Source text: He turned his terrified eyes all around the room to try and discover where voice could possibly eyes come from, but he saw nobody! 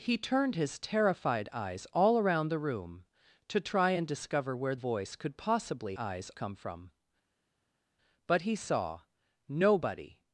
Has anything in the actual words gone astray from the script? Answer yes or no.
no